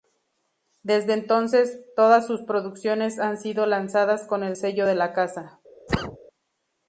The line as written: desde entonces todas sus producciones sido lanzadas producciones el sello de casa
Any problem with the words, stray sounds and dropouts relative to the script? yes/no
yes